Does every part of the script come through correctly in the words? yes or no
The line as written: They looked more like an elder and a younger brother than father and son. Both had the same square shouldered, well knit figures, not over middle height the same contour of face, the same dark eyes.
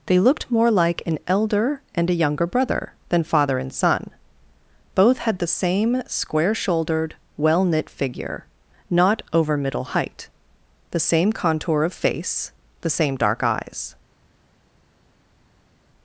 no